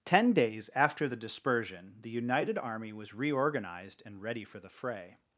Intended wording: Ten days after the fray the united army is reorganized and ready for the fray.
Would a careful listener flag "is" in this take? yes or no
yes